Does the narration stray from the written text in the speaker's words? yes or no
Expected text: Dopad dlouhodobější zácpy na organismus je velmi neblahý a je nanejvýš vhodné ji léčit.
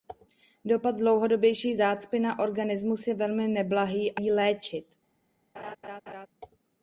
yes